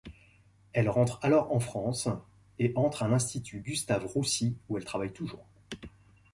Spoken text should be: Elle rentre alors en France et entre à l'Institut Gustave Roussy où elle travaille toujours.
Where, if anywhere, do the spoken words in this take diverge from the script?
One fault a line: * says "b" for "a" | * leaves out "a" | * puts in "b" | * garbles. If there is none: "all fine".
all fine